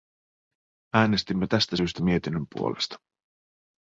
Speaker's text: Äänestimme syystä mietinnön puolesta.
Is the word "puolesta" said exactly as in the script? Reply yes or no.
yes